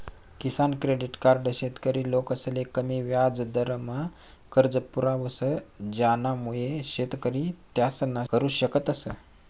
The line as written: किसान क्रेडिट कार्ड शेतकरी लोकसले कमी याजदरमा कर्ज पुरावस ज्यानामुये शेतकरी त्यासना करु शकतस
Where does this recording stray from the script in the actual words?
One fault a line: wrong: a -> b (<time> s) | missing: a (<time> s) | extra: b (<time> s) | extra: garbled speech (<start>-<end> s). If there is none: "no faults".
no faults